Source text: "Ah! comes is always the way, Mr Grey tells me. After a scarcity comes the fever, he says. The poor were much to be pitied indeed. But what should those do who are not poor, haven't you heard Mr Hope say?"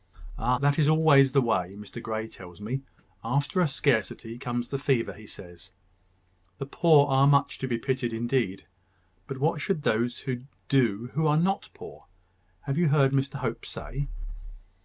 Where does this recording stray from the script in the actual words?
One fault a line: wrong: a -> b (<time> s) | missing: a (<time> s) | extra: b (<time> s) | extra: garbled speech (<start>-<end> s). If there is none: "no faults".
wrong: comes -> that (0.6 s)
wrong: were -> are (7.1 s)
wrong: haven't -> have (12.6 s)